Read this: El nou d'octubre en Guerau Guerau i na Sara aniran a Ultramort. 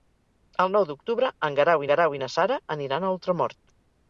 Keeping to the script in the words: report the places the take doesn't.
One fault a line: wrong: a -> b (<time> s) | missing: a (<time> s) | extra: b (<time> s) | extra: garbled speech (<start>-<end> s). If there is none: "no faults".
no faults